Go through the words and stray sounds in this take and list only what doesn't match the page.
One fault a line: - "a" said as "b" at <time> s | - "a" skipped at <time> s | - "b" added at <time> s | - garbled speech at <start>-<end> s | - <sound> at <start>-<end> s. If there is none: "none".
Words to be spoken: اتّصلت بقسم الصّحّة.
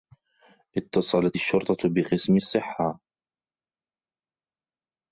- "الشّرطة" added at 1.3 s